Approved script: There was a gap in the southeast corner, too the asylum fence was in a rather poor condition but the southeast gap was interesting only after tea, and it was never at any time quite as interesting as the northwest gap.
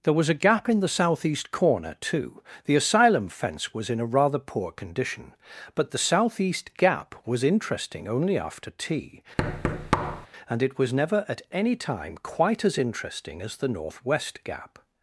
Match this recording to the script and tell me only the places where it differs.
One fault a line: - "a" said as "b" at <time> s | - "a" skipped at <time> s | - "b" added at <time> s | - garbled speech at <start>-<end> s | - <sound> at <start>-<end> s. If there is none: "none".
- thud at 9.4-10.3 s